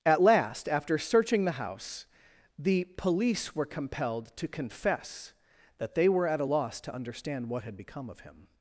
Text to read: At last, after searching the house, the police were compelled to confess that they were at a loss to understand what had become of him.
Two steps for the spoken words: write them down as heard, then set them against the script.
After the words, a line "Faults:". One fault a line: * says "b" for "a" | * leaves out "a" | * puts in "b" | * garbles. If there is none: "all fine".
At last, after searching the house, the police were compelled to confess that they were at a loss to understand what had become of him.
Faults:
all fine